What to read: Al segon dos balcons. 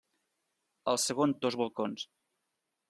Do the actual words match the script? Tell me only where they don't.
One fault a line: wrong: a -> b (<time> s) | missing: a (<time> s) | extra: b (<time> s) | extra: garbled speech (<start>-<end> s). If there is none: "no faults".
no faults